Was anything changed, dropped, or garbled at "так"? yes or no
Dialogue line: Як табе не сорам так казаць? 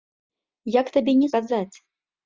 yes